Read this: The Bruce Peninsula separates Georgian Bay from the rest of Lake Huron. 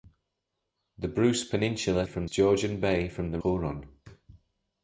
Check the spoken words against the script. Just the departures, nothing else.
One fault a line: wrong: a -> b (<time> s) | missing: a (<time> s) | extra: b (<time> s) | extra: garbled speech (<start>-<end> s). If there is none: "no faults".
wrong: separates -> from (2.0 s)
missing: rest of Lake (3.4 s)